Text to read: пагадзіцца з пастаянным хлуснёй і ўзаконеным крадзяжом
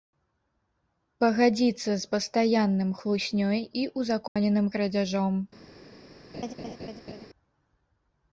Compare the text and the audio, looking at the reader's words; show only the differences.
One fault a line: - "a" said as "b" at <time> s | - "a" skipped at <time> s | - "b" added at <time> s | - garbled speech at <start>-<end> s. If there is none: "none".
none